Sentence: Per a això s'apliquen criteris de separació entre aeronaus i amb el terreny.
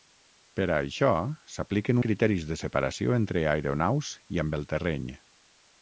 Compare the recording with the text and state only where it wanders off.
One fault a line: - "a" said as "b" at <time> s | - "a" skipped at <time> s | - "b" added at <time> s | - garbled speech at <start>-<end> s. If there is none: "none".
none